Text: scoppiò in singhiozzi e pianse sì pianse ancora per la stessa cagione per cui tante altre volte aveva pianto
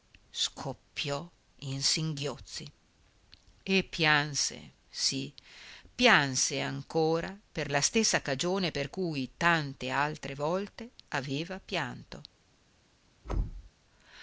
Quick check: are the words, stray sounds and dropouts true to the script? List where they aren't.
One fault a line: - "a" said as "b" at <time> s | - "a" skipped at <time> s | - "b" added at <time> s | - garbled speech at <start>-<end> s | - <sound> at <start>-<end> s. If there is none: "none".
- thud at 13.2-13.7 s